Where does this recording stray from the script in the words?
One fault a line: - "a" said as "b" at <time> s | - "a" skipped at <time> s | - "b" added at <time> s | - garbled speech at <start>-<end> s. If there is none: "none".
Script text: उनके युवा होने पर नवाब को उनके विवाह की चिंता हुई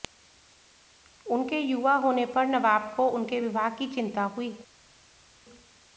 none